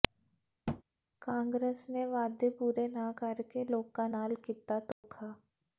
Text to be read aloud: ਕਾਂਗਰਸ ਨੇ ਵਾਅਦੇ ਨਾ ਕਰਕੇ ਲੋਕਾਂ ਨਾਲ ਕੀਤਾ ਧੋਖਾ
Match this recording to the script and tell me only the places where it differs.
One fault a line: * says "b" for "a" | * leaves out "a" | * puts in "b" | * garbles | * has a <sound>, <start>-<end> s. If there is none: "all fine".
* has a thud, 0.7-0.8 s
* puts in "ਪੂਰੇ"
* has a dropout, 4.9-5.0 s